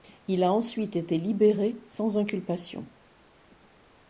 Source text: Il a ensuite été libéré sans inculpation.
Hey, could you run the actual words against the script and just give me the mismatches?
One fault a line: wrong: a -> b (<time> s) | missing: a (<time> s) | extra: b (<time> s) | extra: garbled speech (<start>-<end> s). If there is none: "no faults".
no faults